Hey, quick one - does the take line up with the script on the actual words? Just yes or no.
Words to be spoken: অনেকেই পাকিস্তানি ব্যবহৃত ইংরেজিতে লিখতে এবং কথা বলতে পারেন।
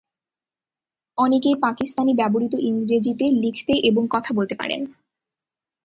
yes